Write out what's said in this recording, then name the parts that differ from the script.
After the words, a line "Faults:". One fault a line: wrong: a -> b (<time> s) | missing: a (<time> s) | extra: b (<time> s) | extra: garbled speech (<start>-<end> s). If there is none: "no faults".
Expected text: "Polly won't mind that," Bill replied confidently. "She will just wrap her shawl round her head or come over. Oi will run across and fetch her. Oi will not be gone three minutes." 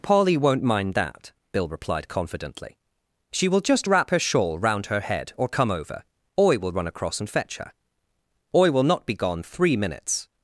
"Polly won't mind that," Bill replied confidently. "She will just wrap her shawl round her head or come over. Oi will run across and fetch her. Oi will not be gone three minutes."
Faults:
no faults